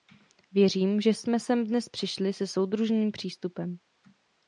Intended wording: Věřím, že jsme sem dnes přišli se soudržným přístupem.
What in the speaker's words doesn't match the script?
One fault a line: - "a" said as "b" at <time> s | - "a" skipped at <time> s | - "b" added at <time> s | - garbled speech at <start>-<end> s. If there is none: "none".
none